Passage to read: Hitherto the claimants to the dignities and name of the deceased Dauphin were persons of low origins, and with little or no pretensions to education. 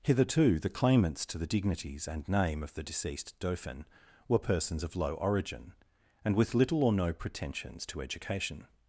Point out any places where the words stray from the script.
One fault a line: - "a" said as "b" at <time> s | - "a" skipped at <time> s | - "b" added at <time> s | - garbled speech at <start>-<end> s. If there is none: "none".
- "origins" said as "origin" at 5.2 s